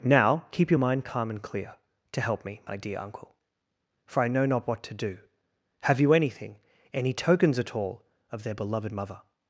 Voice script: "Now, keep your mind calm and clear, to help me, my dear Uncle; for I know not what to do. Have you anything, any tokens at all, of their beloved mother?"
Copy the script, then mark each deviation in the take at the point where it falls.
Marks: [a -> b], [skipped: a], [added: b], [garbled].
"Now, keep your mind calm and clear, to help me, my dear Uncle; for I know not what to do. Have you anything, any tokens at all, of their beloved mother?"